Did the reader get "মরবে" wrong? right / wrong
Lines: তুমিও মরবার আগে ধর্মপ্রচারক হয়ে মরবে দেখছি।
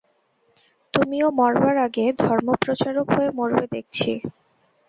right